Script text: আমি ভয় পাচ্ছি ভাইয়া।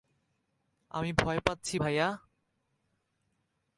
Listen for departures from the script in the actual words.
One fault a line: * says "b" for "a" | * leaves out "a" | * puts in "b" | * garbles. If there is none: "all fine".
all fine